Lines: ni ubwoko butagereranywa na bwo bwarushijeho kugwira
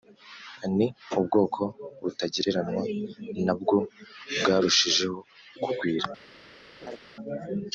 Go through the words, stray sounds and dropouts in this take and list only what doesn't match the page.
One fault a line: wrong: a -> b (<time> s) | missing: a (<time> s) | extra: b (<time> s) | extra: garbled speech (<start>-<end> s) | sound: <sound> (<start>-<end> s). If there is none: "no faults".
sound: laugh (6.8-7.0 s)